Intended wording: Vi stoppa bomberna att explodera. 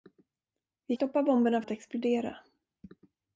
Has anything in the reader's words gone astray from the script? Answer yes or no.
no